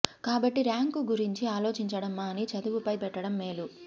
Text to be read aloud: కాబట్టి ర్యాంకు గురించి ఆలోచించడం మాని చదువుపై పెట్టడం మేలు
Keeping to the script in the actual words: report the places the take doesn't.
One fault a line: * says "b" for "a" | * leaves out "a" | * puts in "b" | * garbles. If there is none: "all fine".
all fine